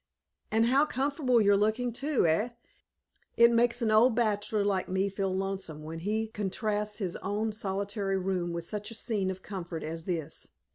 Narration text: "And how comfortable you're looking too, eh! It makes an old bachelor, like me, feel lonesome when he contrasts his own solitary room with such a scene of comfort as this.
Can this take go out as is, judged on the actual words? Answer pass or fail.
pass